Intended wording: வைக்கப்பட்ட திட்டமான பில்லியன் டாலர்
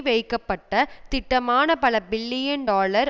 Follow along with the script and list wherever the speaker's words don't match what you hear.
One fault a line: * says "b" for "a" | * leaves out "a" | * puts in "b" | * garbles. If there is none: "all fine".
* puts in "பல"